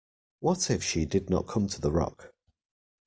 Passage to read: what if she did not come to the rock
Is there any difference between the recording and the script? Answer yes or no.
no